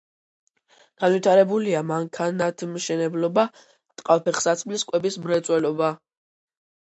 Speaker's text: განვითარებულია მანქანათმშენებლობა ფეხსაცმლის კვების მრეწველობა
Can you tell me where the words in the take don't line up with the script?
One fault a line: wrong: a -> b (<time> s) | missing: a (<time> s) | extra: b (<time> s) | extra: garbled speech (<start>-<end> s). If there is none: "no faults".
extra: ტყავ (4.0 s)